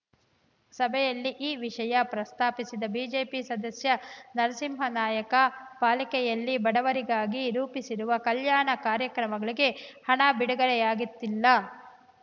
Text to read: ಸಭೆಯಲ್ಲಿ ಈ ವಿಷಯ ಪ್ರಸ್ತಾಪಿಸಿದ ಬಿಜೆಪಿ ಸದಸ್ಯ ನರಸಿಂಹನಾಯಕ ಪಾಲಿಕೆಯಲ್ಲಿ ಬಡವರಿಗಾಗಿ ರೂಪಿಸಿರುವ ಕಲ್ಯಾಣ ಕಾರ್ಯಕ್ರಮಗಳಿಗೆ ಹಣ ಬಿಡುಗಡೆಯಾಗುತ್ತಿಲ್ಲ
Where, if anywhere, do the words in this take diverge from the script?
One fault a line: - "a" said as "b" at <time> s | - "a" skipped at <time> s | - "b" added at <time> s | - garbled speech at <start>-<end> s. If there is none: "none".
none